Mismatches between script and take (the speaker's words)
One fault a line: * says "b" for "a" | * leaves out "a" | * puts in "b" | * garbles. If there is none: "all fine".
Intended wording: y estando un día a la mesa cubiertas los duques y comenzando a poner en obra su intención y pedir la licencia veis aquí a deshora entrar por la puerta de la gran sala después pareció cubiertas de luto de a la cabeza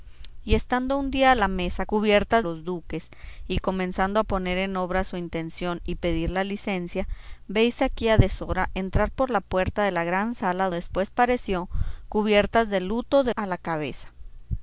all fine